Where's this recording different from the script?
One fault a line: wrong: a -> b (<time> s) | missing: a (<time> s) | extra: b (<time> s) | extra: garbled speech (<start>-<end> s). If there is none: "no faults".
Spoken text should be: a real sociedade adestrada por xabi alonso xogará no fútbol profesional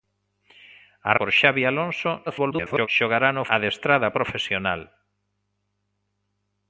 missing: real sociedade adestrada (1.1 s)
extra: garbled speech (2.3-2.9 s)
wrong: fútbol -> adestrada (3.6 s)